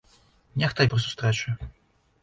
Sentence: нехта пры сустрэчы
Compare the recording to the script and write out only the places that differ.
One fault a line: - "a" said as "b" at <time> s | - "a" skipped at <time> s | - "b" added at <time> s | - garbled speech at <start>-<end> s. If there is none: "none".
none